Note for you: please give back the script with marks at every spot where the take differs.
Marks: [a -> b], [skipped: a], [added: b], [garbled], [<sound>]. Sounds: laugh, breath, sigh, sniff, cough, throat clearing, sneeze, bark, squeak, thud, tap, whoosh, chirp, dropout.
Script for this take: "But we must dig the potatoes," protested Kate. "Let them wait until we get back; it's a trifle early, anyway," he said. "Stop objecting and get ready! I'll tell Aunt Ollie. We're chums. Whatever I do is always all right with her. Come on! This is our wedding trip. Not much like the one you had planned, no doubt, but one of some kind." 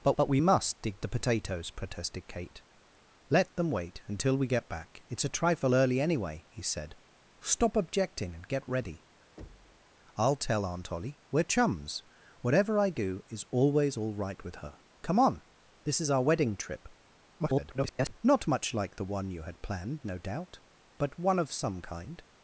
"But [added: but] we must dig the potatoes," protested Kate. "Let them wait until we get back; it's a trifle early, anyway," he said. "Stop objecting and get ready! [thud] I'll tell Aunt Ollie. We're chums. Whatever I do is always all right with her. Come on! This is our wedding trip. [garbled] Not much like the one you had planned, no doubt, but one of some kind."